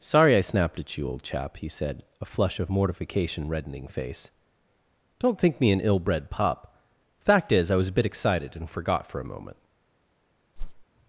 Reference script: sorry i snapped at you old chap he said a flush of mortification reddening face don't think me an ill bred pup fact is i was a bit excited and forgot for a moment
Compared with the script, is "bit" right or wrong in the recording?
right